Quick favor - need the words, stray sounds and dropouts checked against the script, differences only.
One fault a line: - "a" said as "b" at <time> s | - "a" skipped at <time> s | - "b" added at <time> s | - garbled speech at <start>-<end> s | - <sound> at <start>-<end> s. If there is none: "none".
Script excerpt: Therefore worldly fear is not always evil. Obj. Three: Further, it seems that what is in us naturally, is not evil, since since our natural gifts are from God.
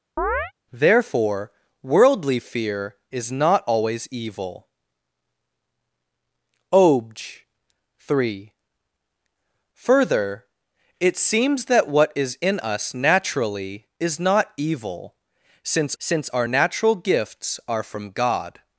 - chirp at 0.2-0.5 s